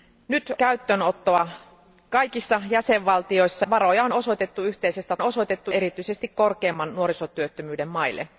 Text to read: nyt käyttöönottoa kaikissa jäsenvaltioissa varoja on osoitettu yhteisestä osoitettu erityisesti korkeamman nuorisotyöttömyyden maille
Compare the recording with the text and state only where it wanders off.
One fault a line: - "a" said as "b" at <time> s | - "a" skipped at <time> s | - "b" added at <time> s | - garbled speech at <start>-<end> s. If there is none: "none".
none